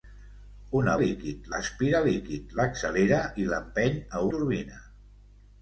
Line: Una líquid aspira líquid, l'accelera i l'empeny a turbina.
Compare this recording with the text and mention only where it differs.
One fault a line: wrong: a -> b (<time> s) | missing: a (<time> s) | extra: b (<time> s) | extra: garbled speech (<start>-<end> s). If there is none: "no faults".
no faults